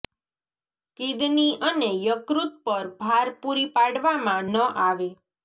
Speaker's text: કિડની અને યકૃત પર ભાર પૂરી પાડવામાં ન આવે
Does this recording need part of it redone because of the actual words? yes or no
no